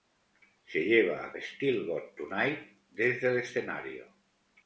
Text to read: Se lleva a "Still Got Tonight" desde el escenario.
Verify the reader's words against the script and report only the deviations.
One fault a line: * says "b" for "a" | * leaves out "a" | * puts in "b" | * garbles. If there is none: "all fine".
all fine